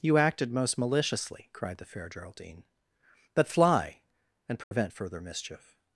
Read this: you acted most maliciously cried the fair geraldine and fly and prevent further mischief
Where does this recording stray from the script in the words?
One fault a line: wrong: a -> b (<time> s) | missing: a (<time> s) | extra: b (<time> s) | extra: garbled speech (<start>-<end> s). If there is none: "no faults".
wrong: and -> but (3.3 s)